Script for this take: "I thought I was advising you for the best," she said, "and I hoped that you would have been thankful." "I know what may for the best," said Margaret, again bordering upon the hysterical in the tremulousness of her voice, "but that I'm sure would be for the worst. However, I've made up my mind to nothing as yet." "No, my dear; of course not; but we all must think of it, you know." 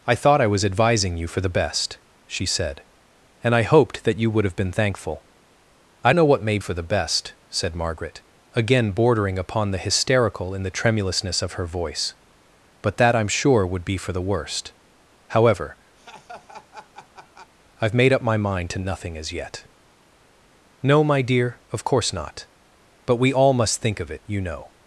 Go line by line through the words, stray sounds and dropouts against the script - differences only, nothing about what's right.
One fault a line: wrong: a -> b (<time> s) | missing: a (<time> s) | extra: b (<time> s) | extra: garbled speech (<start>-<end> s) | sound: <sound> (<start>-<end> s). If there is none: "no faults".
sound: laugh (16.0-17.5 s)